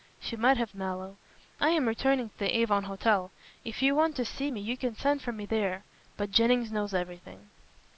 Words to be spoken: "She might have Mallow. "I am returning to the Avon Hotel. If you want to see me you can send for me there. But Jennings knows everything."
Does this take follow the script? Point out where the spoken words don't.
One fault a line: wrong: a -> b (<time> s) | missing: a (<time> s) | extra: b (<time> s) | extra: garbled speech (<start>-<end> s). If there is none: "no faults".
no faults